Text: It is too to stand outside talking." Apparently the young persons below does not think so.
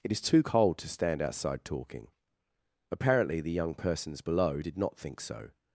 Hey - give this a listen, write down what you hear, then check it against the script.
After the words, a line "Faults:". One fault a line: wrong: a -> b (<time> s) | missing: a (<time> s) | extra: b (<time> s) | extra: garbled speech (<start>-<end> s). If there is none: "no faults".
It is too cold to stand outside talking." Apparently the young persons below did not think so.
Faults:
extra: cold (0.4 s)
wrong: does -> did (4.6 s)